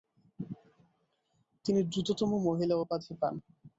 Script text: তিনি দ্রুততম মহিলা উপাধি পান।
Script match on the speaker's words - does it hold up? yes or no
yes